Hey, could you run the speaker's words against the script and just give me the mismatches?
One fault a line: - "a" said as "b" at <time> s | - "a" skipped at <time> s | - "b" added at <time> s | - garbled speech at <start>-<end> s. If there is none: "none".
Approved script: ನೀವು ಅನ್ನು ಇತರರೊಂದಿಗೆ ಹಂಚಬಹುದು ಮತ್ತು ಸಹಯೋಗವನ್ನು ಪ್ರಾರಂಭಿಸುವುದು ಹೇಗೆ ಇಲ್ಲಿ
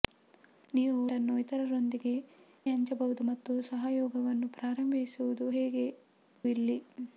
none